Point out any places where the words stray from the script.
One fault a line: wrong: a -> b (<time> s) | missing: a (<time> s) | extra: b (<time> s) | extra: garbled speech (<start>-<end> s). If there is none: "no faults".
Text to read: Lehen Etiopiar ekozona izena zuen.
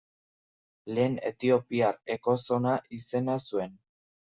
no faults